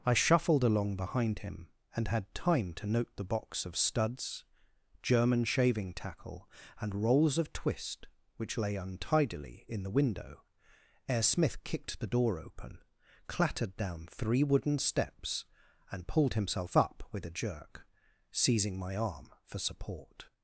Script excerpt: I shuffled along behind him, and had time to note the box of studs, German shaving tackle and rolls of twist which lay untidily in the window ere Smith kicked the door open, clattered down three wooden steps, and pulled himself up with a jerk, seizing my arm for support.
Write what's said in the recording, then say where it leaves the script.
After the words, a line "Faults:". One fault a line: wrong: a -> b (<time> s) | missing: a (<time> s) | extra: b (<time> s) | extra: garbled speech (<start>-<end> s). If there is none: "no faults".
I shuffled along behind him, and had time to note the box of studs, German shaving tackle and rolls of twist which lay untidily in the window ere Smith kicked the door open, clattered down three wooden steps, and pulled himself up with a jerk, seizing my arm for support.
Faults:
no faults